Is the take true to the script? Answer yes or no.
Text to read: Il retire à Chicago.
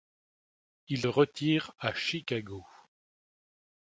yes